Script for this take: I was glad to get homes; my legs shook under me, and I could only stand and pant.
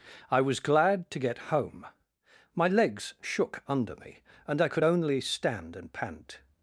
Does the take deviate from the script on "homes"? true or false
true